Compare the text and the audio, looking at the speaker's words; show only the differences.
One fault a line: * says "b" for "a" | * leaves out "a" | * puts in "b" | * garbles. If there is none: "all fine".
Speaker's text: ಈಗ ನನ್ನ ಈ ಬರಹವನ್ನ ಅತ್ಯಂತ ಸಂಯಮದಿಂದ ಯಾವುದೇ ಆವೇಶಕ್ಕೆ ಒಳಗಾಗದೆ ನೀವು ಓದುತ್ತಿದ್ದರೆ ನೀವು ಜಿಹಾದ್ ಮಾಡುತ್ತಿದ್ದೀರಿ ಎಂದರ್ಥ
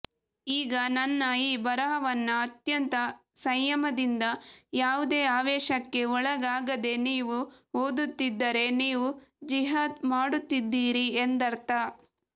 all fine